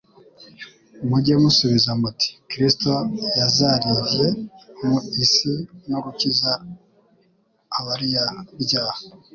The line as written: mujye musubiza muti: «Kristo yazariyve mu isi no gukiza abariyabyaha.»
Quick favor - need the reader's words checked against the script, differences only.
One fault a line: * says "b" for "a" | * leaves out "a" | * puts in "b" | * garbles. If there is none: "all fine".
all fine